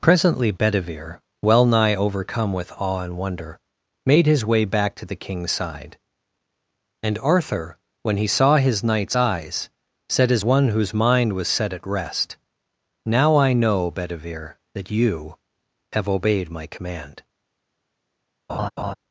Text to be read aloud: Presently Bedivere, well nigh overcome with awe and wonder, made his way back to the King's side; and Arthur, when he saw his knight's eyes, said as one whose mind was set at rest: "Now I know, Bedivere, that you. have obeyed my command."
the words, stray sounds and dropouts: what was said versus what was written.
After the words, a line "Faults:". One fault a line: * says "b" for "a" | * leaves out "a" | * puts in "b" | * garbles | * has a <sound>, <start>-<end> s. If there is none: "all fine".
Presently Bedivere, well nigh overcome with awe and wonder, made his way back to the King's side; and Arthur, when he saw his knight's eyes, said as one whose mind was set at rest: "Now I know, Bedivere, that you. have obeyed my command."
Faults:
* has a laugh, 18.5-18.9 s